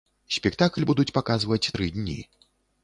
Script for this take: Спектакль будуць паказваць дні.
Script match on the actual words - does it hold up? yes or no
no